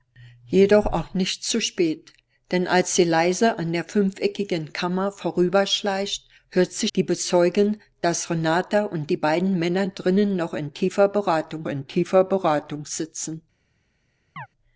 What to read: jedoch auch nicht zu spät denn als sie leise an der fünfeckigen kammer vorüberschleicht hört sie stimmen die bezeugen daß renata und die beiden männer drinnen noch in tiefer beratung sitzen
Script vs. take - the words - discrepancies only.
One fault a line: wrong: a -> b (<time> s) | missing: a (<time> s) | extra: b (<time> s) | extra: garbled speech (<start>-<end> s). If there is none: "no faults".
missing: stimmen (6.9 s)
extra: in tiefer beratung (11.7 s)